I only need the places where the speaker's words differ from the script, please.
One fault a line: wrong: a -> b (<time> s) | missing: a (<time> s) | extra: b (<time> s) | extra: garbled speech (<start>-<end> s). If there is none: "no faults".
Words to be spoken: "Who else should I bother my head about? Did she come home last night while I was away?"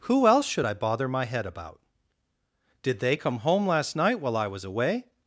wrong: she -> they (3.0 s)